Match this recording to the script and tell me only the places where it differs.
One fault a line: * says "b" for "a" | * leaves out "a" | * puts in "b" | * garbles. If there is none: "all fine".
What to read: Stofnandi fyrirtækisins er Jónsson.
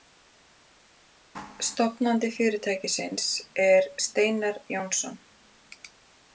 * puts in "Steinar"